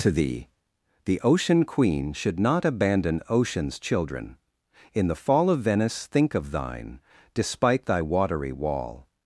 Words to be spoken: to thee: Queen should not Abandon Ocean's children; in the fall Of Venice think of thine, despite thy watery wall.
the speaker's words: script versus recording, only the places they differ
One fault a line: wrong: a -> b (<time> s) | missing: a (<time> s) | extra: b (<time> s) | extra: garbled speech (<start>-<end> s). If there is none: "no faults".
extra: the Ocean (1.1 s)